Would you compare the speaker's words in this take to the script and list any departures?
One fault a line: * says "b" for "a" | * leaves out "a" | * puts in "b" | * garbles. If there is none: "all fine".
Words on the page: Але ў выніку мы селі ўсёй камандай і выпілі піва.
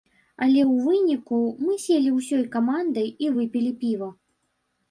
all fine